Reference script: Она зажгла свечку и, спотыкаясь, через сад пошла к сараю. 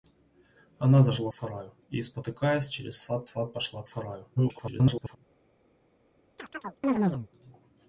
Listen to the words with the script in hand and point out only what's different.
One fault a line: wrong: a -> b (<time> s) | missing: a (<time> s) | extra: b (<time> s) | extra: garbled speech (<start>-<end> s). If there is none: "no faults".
wrong: свечку -> сараю (1.3 s)
extra: сад (3.2 s)
extra: garbled speech (4.4-5.2 s)